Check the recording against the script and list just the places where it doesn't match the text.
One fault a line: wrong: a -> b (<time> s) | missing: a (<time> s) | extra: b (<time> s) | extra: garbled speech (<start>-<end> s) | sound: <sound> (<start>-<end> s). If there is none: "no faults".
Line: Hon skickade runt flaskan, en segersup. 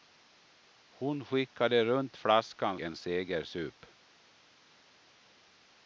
no faults